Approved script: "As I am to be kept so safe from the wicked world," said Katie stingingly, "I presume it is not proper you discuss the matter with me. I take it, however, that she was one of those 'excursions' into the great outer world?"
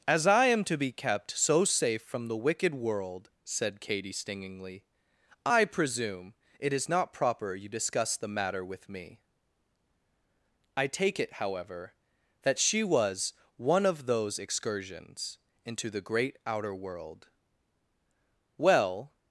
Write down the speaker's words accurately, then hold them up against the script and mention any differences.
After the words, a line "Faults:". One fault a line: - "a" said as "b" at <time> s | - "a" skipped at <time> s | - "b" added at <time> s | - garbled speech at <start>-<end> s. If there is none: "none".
"As I am to be kept so safe from the wicked world," said Katie stingingly, "I presume it is not proper you discuss the matter with me. I take it, however, that she was one of those 'excursions' into the great outer world?" "Well
Faults:
- "Well" added at 18.6 s